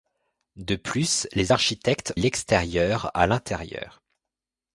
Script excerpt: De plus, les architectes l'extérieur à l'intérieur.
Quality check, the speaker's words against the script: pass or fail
pass